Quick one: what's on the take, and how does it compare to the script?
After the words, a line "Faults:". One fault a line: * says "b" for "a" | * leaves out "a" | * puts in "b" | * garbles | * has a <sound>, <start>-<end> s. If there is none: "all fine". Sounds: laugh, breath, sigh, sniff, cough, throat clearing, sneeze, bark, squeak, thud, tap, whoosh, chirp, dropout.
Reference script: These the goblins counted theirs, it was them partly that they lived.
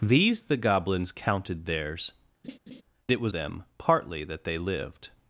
These the goblins counted theirs, it was them partly that they lived.
Faults:
* has a laugh, 2.4-2.8 s